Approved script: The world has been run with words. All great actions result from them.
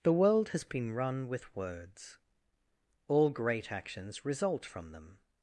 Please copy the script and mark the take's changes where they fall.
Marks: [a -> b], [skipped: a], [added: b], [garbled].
The world has been run with words. All great actions result from them.